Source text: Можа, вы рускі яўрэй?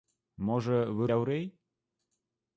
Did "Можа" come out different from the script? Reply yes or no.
no